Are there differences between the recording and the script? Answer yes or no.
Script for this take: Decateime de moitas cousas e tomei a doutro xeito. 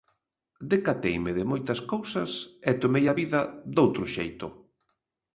yes